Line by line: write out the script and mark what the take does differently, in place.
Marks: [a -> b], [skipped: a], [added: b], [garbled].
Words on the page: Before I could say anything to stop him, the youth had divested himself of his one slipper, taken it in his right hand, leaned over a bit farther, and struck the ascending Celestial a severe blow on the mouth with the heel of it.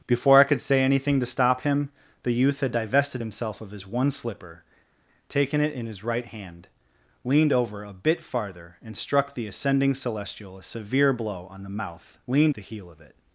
Before I could say anything to stop him, the youth had divested himself of his one slipper, taken it in his right hand, leaned over a bit farther, and struck the ascending Celestial a severe blow on the mouth [with -> leaned] the heel of it.